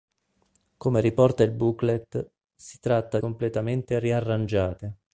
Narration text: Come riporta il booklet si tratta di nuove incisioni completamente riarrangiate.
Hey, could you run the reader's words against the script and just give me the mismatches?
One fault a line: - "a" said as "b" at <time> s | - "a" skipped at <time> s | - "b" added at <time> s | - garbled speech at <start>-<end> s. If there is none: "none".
- "di nuove incisioni" skipped at 3.2 s